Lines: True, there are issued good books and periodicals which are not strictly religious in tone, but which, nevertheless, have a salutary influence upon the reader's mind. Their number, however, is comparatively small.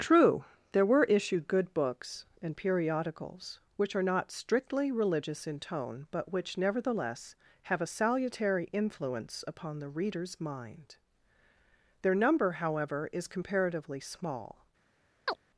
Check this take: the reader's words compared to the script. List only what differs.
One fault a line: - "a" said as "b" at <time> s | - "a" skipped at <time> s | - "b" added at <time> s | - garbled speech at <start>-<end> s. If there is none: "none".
- "are" said as "were" at 0.8 s